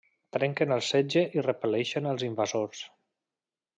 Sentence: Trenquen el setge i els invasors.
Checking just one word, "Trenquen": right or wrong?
right